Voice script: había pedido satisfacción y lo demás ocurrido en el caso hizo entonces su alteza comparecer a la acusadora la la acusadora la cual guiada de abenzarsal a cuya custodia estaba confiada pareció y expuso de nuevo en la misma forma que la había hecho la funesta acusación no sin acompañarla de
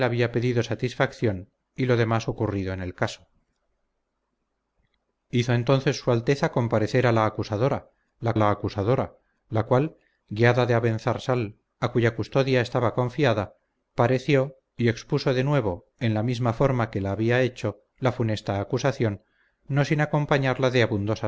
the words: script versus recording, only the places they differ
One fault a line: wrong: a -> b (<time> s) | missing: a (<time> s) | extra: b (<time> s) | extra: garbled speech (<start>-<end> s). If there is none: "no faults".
no faults